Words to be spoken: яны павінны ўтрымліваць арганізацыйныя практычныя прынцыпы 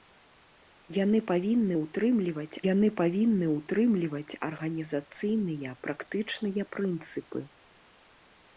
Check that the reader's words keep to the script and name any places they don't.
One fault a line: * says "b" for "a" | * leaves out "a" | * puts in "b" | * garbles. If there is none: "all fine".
* puts in "яны павінны ўтрымліваць"